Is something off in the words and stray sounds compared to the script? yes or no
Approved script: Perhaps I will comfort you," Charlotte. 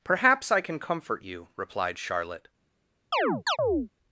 yes